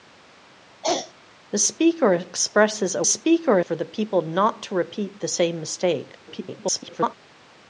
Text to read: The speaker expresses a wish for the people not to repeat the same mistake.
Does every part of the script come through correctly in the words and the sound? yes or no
no